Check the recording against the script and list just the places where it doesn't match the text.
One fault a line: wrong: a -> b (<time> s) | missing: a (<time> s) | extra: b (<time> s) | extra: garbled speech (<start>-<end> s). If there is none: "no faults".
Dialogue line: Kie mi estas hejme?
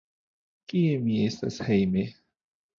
no faults